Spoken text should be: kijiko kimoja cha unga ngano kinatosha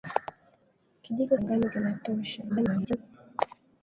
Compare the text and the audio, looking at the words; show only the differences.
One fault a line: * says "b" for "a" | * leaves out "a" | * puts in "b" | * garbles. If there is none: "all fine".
* leaves out "kimoja cha unga"
* garbles